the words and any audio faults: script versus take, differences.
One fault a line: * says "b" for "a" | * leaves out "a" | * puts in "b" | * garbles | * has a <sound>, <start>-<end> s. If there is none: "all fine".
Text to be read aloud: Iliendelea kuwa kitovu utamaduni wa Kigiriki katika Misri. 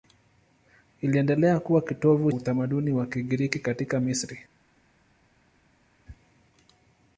all fine